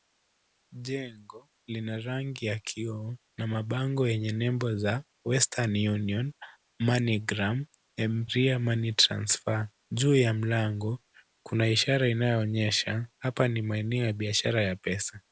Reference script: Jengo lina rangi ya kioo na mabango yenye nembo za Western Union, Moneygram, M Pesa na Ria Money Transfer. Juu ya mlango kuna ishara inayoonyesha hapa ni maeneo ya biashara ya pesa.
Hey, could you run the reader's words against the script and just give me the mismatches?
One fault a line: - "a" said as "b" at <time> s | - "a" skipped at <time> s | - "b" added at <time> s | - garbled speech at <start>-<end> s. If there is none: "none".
- "Pesa na" skipped at 8.2 s